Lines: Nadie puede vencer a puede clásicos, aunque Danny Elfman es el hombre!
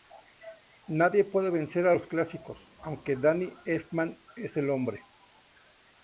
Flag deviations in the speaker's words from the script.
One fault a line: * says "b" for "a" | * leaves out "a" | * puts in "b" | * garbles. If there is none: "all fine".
* says "los" for "puede"